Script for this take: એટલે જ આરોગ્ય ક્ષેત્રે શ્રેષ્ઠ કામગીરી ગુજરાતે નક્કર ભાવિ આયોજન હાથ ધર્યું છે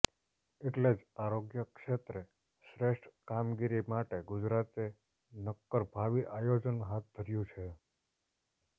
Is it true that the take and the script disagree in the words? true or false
true